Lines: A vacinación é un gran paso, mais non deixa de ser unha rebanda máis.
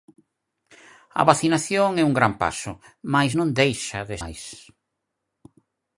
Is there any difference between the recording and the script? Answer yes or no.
yes